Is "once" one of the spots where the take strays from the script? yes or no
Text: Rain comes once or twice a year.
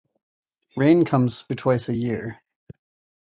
yes